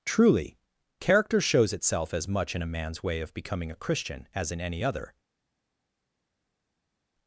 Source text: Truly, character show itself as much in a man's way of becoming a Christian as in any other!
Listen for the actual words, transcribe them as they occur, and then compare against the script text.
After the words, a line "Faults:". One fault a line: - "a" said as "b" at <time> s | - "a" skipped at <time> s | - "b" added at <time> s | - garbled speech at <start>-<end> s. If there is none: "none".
Truly, character shows itself as much in a man's way of becoming a Christian as in any other!
Faults:
- "show" said as "shows" at 1.4 s